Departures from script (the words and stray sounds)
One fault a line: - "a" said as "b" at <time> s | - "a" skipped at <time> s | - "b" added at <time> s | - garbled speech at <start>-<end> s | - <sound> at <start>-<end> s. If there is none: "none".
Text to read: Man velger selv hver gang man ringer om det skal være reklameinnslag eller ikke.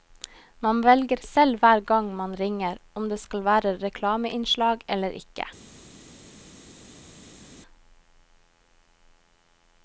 none